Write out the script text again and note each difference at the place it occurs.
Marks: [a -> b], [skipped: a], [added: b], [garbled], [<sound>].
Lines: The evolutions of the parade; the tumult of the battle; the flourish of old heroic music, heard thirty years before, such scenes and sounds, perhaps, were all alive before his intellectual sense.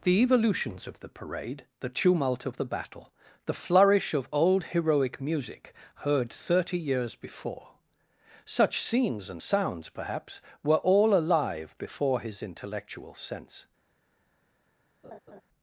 The evolutions of the parade; the tumult of the battle; the flourish of old heroic music, heard thirty years before, such scenes and sounds, perhaps, were all alive before his intellectual sense. [laugh]